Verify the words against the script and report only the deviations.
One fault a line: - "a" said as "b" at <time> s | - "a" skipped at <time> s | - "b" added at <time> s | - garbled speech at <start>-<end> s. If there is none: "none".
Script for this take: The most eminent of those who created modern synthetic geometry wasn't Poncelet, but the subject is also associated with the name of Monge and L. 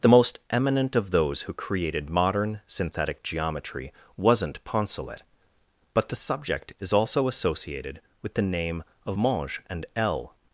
none